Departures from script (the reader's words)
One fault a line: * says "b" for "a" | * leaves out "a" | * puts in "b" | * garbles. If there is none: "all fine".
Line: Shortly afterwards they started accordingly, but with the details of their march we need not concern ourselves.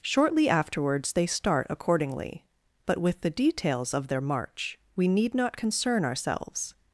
* says "start" for "started"